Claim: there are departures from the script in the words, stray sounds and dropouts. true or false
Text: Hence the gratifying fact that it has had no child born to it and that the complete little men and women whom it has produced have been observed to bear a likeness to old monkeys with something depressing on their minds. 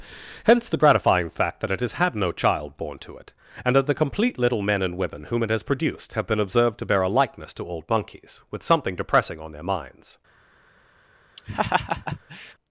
true